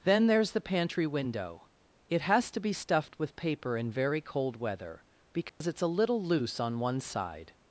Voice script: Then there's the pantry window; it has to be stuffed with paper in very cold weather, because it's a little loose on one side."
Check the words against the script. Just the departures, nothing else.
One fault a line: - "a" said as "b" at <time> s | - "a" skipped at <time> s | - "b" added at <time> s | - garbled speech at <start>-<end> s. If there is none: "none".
none